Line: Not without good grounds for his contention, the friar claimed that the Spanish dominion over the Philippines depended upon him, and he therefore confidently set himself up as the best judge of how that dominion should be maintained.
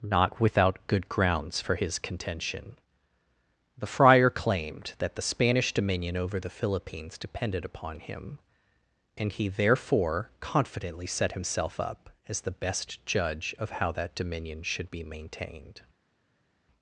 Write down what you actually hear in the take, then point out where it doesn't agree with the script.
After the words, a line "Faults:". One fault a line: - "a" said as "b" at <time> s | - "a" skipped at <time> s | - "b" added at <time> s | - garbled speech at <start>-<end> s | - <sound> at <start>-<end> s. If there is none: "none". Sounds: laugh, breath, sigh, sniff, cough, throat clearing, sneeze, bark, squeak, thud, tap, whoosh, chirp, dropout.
Not without good grounds for his contention, the friar claimed that the Spanish dominion over the Philippines depended upon him, and he therefore confidently set himself up as the best judge of how that dominion should be maintained.
Faults:
none